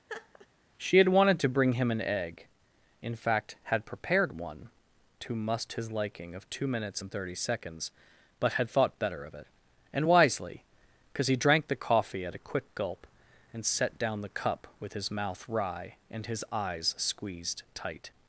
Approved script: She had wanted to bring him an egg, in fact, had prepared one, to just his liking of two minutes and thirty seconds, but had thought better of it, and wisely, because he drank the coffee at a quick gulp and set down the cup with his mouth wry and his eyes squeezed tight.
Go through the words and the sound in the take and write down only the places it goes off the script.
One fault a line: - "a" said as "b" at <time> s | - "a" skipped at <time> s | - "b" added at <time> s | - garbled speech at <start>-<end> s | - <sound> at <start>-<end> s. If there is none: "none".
- laugh at 0.1-0.5 s
- "just" said as "must" at 5.3 s